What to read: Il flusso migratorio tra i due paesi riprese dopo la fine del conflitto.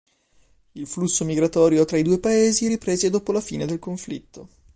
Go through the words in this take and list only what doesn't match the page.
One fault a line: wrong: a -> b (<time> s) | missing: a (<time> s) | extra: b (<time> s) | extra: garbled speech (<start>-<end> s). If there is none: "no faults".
no faults